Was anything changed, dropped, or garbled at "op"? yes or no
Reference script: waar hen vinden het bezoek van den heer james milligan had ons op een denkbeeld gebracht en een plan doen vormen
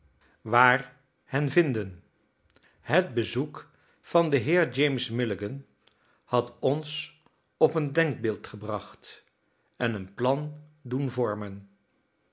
no